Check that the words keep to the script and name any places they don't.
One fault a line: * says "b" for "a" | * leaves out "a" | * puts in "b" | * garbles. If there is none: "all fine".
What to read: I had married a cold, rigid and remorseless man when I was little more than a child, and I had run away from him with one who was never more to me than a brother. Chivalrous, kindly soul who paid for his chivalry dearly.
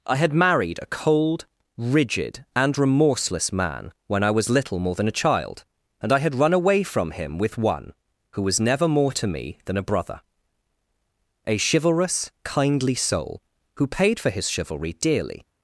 * puts in "A"